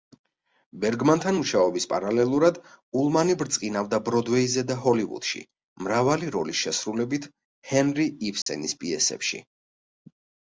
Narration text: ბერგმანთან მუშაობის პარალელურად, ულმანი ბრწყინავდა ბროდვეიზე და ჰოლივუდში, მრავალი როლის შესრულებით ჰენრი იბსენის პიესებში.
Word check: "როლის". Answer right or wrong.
right